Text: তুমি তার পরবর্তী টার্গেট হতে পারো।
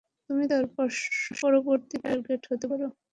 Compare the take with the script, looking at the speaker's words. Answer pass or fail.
pass